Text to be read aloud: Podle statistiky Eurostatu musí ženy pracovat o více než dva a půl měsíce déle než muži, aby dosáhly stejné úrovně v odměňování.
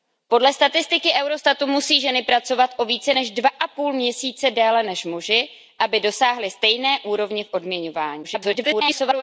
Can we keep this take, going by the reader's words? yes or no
no